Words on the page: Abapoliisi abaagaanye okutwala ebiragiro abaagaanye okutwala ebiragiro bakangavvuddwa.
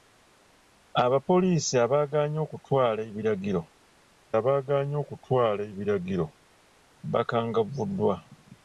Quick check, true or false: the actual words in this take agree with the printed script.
true